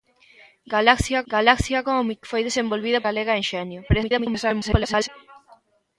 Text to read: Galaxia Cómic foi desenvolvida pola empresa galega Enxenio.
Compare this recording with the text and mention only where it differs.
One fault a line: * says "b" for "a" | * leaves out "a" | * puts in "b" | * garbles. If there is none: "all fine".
* puts in "galaxia"
* leaves out "pola empresa"
* garbles